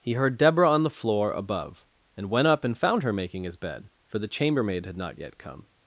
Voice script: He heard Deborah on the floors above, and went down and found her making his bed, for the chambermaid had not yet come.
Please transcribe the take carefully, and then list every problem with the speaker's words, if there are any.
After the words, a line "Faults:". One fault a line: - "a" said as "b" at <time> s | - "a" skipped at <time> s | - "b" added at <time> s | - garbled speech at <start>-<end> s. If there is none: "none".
He heard Deborah on the floor above, and went up and found her making his bed, for the chambermaid had not yet come.
Faults:
- "floors" said as "floor" at 0.9 s
- "down" said as "up" at 2.5 s